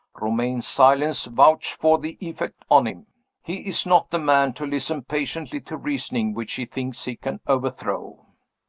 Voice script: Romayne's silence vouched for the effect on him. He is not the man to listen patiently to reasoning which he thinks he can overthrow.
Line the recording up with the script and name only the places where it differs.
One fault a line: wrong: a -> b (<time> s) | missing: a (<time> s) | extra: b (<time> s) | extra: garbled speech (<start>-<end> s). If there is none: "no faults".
no faults